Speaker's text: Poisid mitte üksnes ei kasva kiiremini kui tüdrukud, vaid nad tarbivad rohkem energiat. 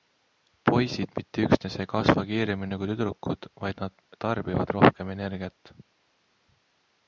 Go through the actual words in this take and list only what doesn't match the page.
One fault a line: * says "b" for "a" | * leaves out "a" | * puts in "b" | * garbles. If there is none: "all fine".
all fine